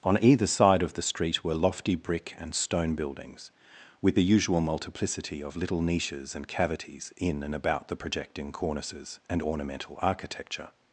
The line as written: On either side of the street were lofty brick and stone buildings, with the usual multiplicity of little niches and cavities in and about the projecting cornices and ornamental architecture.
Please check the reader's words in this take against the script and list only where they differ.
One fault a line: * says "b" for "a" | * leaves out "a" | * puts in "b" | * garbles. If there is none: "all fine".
all fine